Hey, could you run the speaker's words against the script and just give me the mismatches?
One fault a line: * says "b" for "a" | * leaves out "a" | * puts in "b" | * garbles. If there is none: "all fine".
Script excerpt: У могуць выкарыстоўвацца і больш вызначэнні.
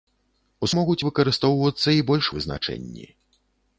all fine